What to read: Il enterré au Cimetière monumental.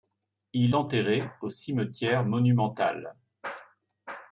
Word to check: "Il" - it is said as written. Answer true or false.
true